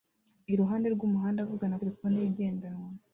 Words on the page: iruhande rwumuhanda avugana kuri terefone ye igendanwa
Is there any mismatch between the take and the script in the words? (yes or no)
yes